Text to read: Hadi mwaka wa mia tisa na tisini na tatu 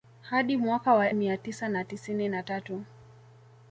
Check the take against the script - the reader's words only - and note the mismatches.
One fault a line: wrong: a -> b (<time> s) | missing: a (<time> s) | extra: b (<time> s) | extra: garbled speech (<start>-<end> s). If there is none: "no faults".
no faults